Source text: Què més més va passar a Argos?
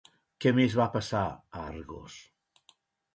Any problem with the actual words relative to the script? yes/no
yes